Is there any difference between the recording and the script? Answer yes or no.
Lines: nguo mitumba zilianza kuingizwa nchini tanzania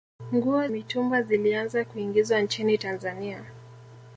no